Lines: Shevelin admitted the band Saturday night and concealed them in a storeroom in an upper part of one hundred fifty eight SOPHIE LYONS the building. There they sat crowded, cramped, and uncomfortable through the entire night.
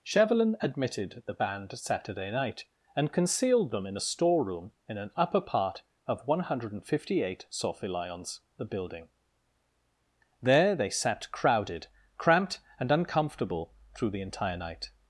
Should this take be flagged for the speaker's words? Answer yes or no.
no